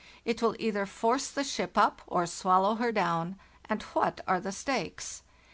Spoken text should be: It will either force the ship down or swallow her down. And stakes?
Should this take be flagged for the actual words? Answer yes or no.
yes